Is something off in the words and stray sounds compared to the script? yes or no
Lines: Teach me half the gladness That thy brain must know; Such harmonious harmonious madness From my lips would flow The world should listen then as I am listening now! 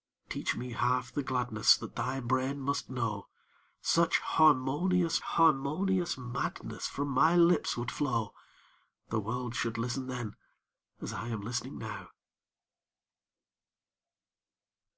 no